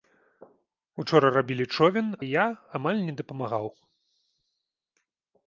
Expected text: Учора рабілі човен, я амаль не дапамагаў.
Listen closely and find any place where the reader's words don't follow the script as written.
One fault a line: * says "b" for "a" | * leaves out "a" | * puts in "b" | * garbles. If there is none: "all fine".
all fine